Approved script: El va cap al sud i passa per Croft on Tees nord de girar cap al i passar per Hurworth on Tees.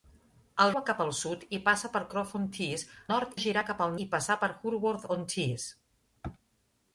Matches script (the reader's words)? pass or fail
pass